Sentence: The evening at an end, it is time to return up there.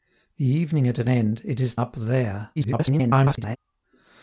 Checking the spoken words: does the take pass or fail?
fail